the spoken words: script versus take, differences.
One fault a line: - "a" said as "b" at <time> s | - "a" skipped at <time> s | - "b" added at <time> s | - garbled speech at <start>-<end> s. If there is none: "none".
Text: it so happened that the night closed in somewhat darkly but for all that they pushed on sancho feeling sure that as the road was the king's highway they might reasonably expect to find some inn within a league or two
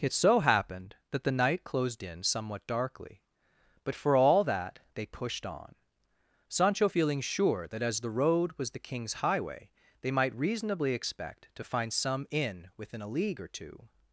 none